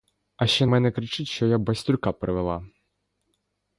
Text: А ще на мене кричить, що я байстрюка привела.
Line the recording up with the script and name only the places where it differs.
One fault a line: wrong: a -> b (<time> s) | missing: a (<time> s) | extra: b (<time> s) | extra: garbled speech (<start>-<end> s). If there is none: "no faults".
missing: на (0.7 s)